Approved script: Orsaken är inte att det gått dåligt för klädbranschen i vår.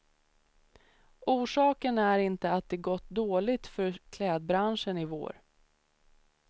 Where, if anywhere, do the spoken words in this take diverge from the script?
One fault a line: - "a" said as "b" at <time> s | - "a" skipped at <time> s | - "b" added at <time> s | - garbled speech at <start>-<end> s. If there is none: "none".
none